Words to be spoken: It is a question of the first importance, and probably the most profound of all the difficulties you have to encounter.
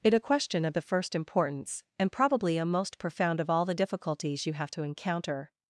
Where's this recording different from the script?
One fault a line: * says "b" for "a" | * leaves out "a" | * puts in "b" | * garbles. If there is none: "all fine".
* leaves out "is"
* says "a" for "the"